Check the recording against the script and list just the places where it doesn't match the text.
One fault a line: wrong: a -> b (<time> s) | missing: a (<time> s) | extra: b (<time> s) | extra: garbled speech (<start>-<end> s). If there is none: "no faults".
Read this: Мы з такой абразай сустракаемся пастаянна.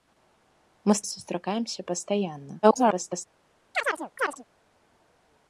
missing: такой абразай (1.0 s)
extra: garbled speech (2.6-3.3 s)